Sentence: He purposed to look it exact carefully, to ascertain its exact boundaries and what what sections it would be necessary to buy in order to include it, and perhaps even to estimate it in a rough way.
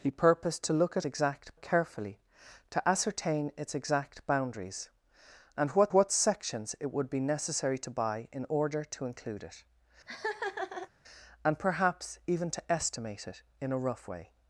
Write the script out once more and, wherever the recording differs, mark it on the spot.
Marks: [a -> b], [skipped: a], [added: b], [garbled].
He purposed to look it exact carefully, to ascertain its exact boundaries and what what sections it would be necessary to buy in order to include it, and perhaps even to estimate it in a rough way.